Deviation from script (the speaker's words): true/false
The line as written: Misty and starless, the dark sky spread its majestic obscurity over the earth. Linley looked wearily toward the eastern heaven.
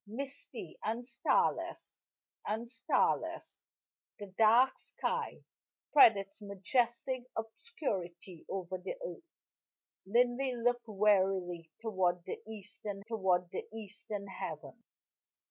true